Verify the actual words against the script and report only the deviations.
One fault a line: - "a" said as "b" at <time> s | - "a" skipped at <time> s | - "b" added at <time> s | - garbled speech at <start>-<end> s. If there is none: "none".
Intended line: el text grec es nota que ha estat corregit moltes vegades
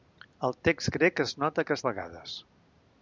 - "estat corregit moltes" skipped at 1.8 s